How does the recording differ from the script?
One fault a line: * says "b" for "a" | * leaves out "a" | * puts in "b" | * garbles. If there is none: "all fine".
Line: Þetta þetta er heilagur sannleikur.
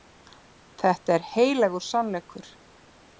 * leaves out "þetta"